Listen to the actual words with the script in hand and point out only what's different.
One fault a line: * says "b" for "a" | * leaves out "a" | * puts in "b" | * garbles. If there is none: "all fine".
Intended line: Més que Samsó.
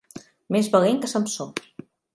* puts in "valent"